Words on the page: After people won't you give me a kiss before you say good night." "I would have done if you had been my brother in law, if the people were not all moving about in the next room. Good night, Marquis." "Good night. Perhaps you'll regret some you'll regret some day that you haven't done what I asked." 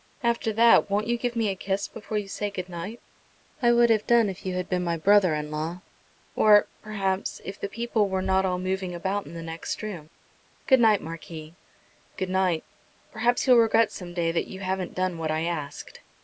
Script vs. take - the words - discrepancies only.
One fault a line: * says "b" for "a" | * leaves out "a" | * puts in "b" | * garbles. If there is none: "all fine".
* says "that" for "people"
* puts in "or perhaps"
* leaves out "you'll regret some"